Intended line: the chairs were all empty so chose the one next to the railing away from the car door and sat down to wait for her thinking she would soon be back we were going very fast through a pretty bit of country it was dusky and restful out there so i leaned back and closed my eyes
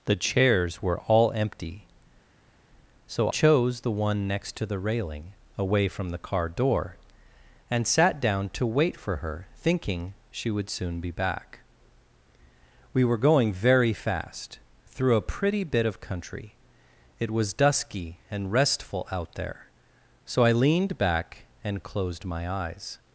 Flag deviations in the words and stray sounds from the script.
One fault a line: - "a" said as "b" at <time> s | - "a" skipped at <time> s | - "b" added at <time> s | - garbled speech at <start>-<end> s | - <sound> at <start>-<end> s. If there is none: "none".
none